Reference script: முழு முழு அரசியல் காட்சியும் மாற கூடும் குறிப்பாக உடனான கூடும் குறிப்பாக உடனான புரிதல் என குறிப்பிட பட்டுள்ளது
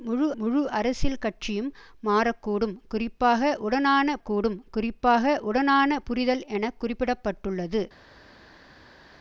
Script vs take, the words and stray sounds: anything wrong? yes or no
no